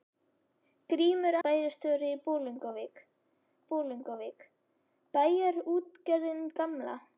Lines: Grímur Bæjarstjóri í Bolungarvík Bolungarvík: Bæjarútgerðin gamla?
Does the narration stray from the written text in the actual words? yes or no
no